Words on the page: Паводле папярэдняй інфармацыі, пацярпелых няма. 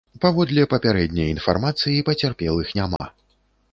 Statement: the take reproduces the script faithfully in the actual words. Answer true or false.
true